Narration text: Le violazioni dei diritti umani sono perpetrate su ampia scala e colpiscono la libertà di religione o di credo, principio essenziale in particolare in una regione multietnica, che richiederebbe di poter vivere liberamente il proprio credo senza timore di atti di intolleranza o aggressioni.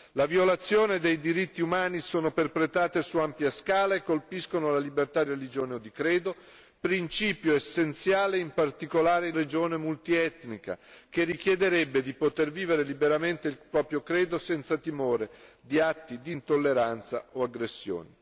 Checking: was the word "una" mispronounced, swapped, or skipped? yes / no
yes